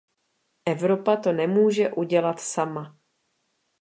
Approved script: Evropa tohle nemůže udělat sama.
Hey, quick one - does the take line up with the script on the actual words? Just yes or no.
no